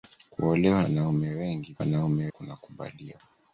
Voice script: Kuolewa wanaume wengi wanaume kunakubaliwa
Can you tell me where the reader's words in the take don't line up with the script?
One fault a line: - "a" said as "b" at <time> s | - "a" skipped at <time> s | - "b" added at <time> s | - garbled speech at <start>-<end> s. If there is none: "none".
none